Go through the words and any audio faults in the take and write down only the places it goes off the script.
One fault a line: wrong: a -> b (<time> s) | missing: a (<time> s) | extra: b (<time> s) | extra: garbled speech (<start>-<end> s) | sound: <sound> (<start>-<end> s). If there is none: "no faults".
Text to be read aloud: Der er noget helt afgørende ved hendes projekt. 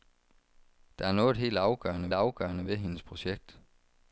extra: afgørende (2.1 s)